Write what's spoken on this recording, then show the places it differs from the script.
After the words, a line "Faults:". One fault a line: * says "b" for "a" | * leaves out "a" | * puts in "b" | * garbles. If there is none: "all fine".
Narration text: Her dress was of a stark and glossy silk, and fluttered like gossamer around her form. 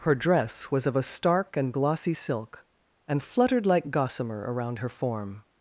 Her dress was of a stark and glossy silk, and fluttered like gossamer around her form.
Faults:
all fine